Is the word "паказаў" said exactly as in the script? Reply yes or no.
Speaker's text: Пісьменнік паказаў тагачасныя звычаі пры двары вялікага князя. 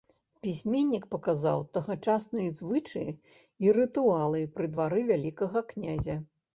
yes